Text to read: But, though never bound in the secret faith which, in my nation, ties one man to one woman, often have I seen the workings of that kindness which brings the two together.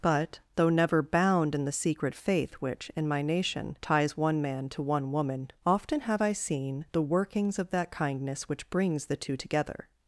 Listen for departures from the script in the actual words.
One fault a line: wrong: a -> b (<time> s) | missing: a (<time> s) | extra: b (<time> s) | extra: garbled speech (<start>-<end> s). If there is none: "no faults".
no faults